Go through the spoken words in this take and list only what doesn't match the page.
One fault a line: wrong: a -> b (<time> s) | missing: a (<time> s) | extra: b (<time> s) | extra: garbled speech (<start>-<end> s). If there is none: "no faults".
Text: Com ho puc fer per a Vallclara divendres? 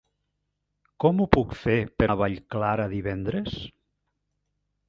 no faults